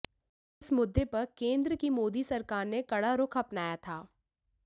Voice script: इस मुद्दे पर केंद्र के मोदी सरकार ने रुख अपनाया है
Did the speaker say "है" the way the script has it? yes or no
no